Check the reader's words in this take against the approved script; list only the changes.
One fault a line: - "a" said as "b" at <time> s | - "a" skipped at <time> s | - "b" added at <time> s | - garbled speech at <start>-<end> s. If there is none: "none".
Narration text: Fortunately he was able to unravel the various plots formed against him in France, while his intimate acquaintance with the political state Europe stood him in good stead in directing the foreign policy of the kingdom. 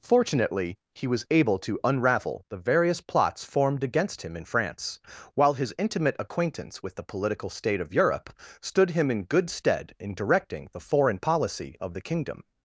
- "of" added at 7.8 s